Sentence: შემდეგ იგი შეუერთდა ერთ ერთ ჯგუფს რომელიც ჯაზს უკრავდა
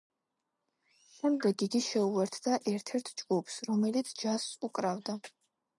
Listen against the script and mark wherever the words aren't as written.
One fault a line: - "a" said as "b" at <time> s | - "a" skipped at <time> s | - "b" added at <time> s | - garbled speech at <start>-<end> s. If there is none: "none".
none